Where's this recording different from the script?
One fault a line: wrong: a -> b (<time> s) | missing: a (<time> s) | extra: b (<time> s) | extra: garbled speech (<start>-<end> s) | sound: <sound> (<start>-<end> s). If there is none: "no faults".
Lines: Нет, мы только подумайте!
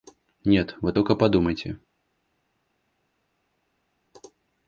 wrong: мы -> вы (0.8 s)